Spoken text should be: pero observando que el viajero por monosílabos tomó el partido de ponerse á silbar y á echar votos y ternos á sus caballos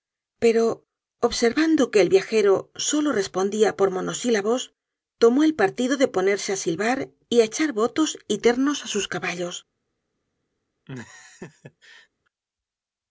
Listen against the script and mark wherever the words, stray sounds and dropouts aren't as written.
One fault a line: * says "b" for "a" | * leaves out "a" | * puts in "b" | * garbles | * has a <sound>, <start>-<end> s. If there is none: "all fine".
* puts in "solo respondia"
* has a laugh, 10.9-12.1 s